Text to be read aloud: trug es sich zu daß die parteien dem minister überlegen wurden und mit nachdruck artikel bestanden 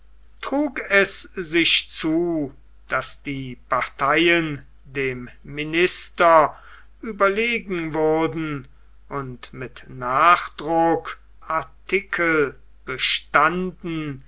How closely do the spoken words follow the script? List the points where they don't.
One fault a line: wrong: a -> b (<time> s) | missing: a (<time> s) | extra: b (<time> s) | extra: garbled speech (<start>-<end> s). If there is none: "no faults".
no faults